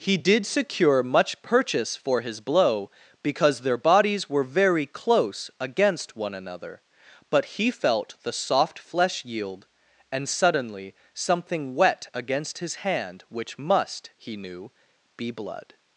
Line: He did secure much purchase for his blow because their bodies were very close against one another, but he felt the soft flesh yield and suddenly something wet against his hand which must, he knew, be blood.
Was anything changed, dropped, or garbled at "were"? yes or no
no